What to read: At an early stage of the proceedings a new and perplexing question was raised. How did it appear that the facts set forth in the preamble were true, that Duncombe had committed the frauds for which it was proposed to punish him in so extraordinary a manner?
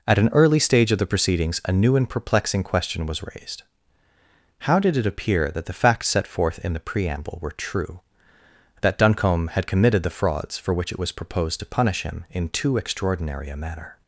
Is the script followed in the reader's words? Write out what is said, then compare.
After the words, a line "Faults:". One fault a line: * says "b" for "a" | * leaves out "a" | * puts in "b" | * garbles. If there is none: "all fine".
At an early stage of the proceedings a new and perplexing question was raised. How did it appear that the facts set forth in the preamble were true, that Duncombe had committed the frauds for which it was proposed to punish him in too extraordinary a manner?
Faults:
* says "too" for "so"